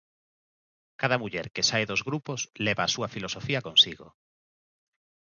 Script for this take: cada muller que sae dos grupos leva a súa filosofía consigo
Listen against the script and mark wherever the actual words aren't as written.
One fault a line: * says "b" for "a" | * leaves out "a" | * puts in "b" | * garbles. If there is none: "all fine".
all fine